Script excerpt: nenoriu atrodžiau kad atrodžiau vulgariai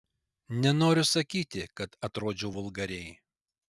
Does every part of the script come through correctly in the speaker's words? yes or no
no